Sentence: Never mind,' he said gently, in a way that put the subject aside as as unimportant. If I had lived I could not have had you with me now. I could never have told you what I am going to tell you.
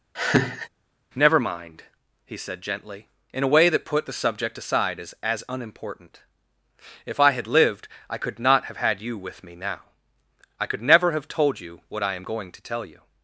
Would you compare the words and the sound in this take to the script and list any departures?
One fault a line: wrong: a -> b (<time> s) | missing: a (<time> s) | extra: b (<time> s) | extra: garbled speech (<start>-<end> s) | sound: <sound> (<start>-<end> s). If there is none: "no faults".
sound: laugh (0.1-0.7 s)